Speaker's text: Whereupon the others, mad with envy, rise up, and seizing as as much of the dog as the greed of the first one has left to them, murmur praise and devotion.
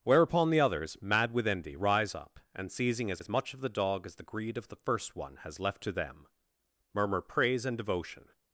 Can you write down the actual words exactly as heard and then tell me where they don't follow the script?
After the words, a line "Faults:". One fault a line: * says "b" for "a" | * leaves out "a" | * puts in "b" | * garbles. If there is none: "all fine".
Whereupon the others, mad with envy, rise up, and seizing as as much of the dog as the greed of the first one has left to them, murmur praise and devotion.
Faults:
all fine